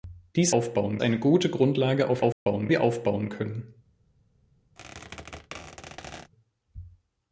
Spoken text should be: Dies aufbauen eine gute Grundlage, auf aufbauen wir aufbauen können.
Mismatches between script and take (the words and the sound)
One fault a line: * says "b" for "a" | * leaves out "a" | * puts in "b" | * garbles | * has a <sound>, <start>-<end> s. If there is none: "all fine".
* has a dropout, 2.3-2.5 s
* has a squeak, 4.8-6.3 s